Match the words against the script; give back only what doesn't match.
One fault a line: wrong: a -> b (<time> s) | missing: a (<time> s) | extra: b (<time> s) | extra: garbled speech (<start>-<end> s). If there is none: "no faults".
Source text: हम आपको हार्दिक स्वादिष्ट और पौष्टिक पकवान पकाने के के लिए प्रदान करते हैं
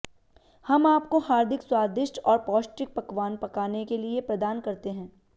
missing: के (4.0 s)